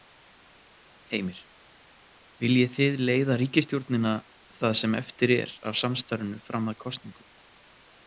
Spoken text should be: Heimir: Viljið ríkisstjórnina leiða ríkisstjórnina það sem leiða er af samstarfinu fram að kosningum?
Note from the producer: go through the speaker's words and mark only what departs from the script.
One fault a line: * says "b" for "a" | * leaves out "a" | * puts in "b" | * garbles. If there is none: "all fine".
* says "þið" for "ríkisstjórnina"
* says "eftir" for "leiða"